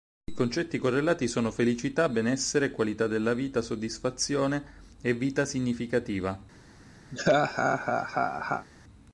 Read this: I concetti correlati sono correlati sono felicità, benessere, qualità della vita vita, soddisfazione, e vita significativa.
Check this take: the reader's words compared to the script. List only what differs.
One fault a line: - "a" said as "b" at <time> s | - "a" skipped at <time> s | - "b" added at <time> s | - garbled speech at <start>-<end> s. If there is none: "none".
- "correlati sono" skipped at 1.5 s
- "vita" skipped at 3.6 s